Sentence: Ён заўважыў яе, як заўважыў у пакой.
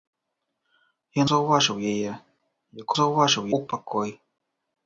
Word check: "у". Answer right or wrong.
right